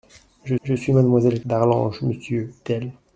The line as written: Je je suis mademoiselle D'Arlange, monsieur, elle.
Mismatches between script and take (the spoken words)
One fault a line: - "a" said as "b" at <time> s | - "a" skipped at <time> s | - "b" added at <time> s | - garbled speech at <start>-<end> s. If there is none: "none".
none